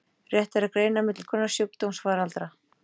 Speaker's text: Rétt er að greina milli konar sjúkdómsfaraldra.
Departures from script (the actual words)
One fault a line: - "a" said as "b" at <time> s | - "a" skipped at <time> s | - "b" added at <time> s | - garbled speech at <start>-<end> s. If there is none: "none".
none